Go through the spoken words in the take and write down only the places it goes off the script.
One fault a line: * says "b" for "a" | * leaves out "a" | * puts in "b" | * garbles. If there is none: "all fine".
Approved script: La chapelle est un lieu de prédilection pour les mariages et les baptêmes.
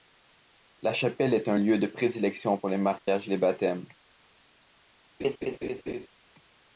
all fine